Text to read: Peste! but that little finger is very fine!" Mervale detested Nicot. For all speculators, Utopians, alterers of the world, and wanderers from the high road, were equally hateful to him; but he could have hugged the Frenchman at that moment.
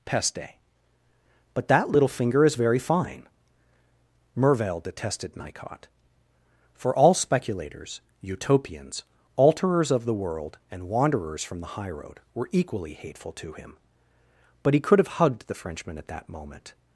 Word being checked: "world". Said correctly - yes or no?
yes